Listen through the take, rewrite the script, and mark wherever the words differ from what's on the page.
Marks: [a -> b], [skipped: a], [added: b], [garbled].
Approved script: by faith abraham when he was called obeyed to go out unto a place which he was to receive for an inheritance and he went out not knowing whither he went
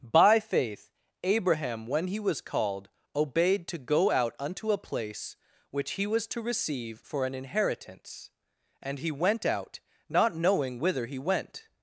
by faith abraham when he was called obeyed to go out unto a place which he was to receive for an inheritance and he went out not knowing whither he went